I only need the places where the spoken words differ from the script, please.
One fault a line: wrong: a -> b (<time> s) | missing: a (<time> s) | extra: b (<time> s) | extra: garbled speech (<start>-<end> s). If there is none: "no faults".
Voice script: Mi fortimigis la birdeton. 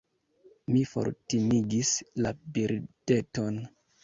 no faults